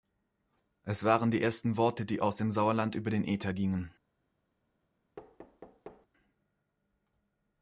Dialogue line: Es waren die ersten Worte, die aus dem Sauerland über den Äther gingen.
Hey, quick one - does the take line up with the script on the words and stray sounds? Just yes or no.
no